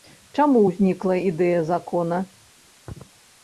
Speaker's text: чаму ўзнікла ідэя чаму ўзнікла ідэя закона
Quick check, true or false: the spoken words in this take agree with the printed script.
false